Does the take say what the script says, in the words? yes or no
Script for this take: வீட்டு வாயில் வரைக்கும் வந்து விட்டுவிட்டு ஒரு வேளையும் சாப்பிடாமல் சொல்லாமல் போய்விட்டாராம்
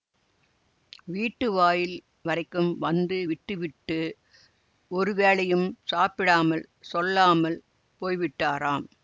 yes